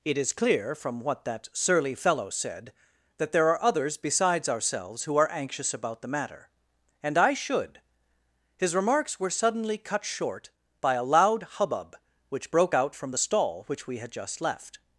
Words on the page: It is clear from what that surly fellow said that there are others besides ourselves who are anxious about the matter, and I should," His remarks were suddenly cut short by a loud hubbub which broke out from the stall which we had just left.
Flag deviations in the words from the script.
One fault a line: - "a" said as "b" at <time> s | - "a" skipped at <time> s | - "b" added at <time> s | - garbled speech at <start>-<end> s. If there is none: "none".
none